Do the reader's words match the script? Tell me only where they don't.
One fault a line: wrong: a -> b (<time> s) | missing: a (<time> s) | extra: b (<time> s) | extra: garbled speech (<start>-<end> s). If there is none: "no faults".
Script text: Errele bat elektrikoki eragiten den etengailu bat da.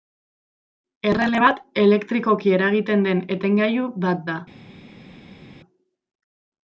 no faults